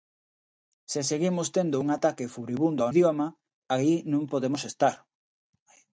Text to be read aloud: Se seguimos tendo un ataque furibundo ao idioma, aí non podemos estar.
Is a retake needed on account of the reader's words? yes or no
no